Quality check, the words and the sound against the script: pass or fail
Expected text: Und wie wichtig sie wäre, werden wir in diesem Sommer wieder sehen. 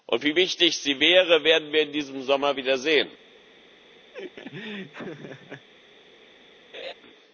fail